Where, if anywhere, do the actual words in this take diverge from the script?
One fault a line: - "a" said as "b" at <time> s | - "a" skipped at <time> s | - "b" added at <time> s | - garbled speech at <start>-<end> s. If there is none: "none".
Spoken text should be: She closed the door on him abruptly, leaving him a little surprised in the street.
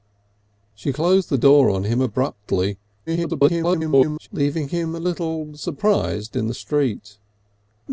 - garbled speech at 3.1-4.3 s